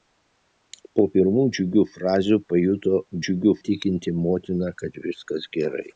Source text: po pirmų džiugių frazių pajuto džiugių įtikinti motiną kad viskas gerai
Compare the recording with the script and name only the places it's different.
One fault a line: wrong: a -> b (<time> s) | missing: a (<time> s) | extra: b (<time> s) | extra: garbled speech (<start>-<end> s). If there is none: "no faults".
no faults